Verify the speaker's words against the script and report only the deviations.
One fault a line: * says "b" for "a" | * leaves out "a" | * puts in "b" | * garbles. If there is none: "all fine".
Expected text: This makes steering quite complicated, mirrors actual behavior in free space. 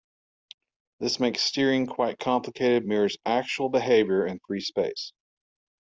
all fine